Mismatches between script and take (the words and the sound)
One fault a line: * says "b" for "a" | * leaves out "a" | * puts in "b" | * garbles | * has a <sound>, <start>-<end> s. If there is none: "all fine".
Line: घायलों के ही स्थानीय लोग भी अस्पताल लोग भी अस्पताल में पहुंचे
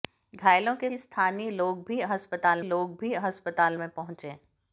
all fine